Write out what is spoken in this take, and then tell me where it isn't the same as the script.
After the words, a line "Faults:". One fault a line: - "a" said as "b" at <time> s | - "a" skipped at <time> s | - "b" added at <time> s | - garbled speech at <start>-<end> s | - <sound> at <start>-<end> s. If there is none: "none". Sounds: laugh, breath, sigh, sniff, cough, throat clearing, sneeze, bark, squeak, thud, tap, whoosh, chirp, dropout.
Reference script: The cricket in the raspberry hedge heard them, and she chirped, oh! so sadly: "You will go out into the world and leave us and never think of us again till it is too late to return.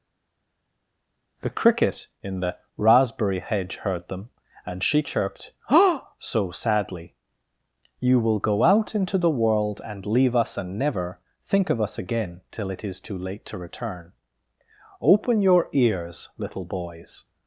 The cricket in the raspberry hedge heard them, and she chirped, oh! so sadly: "You will go out into the world and leave us and never think of us again till it is too late to return. Open your ears, little boys
Faults:
- "Open your ears little boys" added at 15.0 s